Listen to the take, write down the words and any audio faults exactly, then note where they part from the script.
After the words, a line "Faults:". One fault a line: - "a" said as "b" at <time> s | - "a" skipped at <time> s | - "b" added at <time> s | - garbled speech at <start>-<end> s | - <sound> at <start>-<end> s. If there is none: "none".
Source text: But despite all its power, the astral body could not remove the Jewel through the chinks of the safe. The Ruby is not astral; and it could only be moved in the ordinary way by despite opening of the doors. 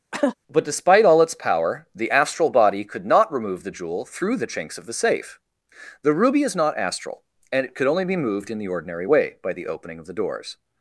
But despite all its power, the astral body could not remove the Jewel through the chinks of the safe. The Ruby is not astral; and it could only be moved in the ordinary way by the opening of the doors.
Faults:
- cough at 0.1-0.4 s
- "despite" said as "the" at 9.5 s